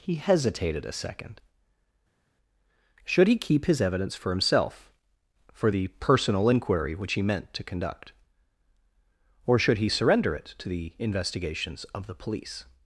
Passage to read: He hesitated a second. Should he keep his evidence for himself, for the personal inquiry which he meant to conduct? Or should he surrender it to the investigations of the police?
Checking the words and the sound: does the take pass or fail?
pass